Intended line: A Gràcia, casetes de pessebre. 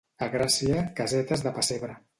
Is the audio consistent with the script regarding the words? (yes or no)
yes